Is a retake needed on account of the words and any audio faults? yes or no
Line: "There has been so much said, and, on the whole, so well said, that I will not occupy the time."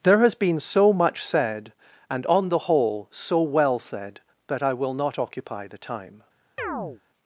yes